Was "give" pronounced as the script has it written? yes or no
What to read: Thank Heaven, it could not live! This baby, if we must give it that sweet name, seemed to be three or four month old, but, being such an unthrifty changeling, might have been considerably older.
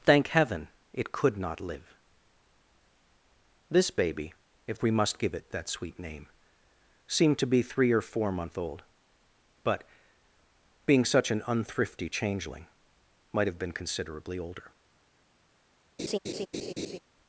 yes